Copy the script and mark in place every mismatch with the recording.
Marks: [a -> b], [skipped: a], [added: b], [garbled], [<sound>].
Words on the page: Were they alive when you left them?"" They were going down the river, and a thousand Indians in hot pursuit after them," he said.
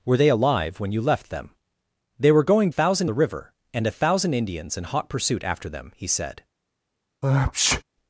Were they alive when you left them?"" They were going [down -> thousand] the river, and a thousand Indians in hot pursuit after them," he said. [sneeze]